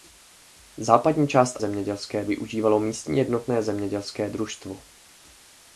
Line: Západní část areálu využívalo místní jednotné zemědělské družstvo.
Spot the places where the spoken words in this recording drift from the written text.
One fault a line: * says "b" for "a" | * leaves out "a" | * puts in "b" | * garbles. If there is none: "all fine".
* says "zemědělské" for "areálu"